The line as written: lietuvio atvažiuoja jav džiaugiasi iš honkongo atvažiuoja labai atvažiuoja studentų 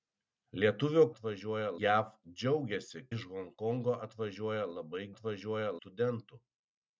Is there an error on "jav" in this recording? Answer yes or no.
no